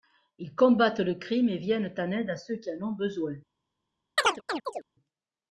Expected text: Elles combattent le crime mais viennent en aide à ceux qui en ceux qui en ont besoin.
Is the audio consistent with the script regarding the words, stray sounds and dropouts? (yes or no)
no